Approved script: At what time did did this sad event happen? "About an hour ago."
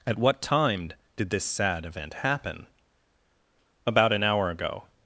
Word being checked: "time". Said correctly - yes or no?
yes